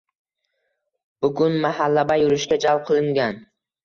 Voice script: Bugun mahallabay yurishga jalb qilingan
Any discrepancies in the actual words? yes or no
no